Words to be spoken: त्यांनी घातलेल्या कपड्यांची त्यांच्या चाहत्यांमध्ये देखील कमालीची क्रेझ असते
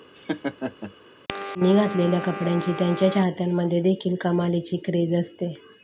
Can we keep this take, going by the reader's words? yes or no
yes